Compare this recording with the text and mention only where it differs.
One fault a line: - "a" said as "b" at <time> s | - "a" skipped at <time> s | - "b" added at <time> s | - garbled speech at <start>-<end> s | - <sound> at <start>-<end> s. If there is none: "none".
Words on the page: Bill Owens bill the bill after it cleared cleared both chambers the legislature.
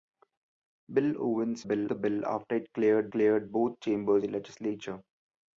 none